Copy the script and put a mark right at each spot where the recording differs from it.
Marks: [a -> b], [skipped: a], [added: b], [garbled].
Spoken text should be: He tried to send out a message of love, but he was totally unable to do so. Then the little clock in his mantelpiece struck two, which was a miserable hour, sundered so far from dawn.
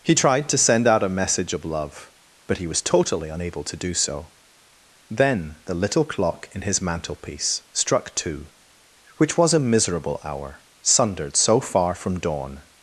He tried to send out a message of love, but he was totally unable to do so. Then the little clock in his mantelpiece struck two, which was a miserable hour, sundered so far from dawn.